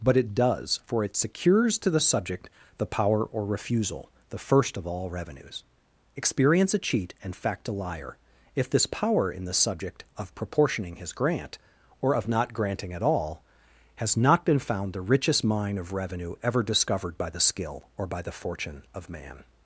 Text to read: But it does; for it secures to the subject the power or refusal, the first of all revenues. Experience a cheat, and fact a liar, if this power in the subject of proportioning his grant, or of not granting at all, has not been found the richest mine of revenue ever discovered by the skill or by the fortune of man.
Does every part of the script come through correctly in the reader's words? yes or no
yes